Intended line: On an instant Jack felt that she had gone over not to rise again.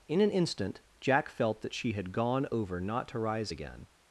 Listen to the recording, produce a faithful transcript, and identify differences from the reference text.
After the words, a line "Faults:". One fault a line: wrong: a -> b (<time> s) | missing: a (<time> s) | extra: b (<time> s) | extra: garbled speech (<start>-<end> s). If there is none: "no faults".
In an instant Jack felt that she had gone over not to rise again.
Faults:
wrong: On -> In (0.1 s)